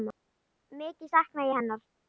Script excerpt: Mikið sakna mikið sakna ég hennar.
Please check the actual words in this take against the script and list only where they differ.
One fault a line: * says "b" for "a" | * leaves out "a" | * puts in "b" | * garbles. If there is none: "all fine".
* leaves out "mikið sakna"